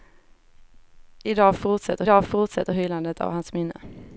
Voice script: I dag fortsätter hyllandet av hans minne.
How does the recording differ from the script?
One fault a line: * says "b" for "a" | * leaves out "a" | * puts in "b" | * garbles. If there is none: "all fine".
* puts in "dag fortsätter"